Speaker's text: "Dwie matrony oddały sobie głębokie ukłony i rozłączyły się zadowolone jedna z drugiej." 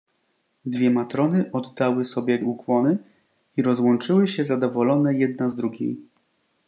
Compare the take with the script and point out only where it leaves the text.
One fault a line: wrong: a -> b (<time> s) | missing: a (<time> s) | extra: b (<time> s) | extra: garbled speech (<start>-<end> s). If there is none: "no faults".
missing: głębokie (2.4 s)